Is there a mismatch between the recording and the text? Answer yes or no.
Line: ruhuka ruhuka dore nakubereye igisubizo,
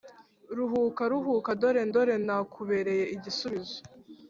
yes